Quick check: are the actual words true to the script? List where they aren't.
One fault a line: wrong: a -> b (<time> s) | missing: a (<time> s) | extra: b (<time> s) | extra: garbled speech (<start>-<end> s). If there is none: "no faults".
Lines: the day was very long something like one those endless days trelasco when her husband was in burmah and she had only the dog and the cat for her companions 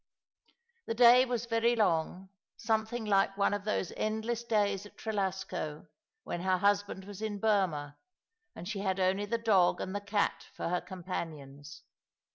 extra: of (3.5 s)
extra: at (4.8 s)